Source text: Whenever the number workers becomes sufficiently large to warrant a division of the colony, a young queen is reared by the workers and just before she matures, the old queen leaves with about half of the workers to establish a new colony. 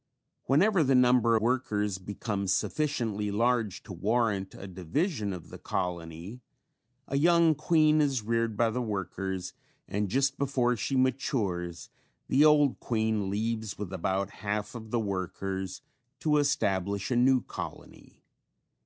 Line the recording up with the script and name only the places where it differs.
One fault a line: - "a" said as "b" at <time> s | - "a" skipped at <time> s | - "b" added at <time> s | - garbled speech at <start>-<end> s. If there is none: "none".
none